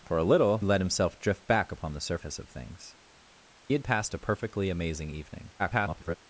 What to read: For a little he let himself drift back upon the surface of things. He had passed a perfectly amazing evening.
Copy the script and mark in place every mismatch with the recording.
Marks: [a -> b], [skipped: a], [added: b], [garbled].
For a little [skipped: he] let himself drift back upon the surface of things. [skipped: He] had passed a perfectly amazing evening. [garbled]